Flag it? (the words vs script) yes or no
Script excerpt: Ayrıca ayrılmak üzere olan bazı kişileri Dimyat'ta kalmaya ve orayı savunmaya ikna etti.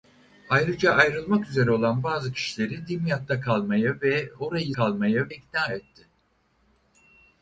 yes